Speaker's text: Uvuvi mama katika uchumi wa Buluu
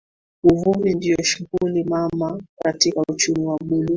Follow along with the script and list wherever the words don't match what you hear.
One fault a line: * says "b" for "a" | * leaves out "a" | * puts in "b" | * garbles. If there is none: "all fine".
* puts in "ndio shughuli"